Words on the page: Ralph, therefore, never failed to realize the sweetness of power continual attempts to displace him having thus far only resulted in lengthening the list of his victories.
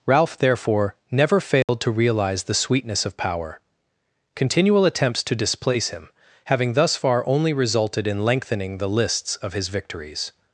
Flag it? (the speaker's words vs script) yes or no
yes